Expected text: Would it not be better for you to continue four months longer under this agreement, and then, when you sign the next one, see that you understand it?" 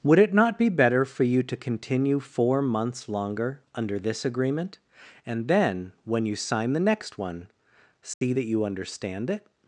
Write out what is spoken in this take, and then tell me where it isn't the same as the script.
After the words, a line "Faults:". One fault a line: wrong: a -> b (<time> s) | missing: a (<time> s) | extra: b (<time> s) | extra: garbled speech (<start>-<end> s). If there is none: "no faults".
Would it not be better for you to continue four months longer under this agreement, and then, when you sign the next one, see that you understand it?"
Faults:
no faults